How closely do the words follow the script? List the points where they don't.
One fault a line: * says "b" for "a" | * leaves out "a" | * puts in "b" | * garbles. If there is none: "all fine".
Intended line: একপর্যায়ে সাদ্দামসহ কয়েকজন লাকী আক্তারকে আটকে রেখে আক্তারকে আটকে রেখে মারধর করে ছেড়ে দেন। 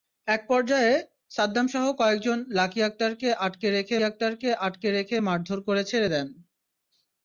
all fine